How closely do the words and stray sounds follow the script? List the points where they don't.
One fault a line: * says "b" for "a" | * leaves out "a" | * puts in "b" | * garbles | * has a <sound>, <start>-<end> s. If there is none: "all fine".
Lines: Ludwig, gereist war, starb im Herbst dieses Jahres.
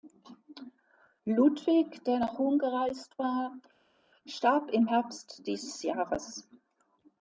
* puts in "der nach Rom"